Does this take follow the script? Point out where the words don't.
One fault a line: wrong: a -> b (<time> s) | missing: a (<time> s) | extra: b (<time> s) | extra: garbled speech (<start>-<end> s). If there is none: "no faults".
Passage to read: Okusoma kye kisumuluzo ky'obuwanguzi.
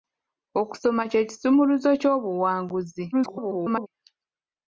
extra: garbled speech (3.1-3.9 s)